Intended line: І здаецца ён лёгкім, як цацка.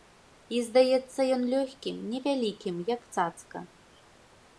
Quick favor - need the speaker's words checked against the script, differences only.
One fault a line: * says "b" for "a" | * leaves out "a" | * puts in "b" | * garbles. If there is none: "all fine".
* puts in "невялікім"